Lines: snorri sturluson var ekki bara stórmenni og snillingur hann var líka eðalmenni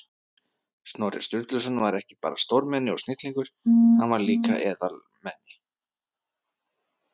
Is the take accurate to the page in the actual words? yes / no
yes